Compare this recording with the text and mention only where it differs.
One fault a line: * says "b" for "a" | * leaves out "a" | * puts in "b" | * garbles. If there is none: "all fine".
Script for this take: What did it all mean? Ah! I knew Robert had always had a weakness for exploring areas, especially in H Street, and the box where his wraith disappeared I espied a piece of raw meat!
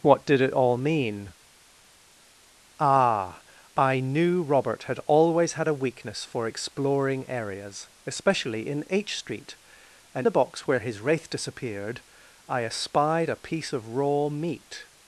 all fine